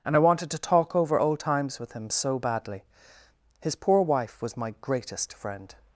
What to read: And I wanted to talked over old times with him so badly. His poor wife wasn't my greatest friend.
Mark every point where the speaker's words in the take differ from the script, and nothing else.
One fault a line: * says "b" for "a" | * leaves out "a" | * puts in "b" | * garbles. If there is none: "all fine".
* says "talk" for "talked"
* says "was" for "wasn't"